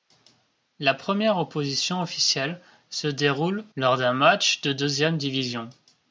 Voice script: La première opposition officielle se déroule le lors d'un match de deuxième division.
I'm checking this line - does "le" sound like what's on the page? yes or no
no